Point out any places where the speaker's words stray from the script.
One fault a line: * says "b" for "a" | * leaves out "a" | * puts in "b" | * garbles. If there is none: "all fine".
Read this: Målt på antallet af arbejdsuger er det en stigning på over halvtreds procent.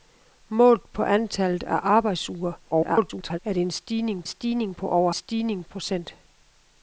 * garbles
* puts in "stigning"
* says "stigning" for "halvtreds"